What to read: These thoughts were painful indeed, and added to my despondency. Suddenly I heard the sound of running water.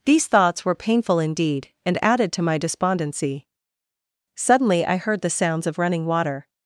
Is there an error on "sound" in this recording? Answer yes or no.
yes